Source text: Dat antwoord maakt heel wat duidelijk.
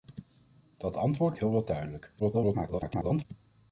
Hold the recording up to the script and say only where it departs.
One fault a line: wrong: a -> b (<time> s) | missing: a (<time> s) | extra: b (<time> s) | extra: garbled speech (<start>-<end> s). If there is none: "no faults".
missing: maakt (1.4 s)
extra: garbled speech (2.2-3.2 s)